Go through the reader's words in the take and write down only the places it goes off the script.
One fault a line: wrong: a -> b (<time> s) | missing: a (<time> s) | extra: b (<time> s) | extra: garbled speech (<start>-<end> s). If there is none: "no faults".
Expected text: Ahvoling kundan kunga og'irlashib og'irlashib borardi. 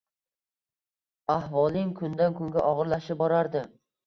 missing: og'irlashib (3.2 s)